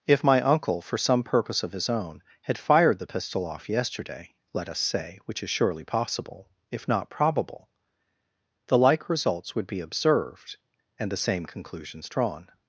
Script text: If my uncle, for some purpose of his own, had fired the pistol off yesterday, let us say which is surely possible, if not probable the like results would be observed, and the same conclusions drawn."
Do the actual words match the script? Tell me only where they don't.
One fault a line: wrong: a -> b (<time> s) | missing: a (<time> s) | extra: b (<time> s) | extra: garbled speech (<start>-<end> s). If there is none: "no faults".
no faults